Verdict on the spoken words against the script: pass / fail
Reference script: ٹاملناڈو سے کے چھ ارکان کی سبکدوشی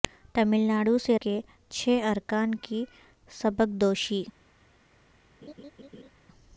pass